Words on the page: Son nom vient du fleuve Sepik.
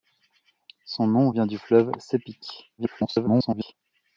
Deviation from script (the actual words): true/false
true